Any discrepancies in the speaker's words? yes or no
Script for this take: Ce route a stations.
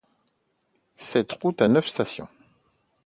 yes